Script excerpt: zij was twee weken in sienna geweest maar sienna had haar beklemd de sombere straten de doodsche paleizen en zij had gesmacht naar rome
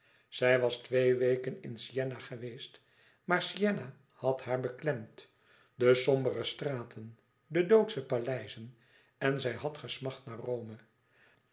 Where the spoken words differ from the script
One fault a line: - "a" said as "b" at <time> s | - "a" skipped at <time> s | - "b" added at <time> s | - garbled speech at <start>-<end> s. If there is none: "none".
none